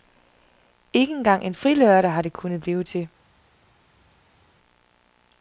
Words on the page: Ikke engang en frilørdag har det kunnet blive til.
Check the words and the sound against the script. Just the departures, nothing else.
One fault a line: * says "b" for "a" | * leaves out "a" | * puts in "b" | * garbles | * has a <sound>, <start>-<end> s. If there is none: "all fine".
all fine